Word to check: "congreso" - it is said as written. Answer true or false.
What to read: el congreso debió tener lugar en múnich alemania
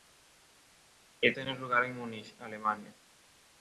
false